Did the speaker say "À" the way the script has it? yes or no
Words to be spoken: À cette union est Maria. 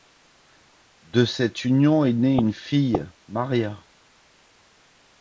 no